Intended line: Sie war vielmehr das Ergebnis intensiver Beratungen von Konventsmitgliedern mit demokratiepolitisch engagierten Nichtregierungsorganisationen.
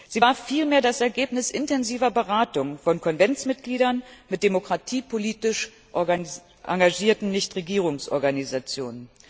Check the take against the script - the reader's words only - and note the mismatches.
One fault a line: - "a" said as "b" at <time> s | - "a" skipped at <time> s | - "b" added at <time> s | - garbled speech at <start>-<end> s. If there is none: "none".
none